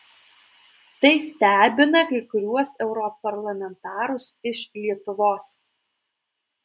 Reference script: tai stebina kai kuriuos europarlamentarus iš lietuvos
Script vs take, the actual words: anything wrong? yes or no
no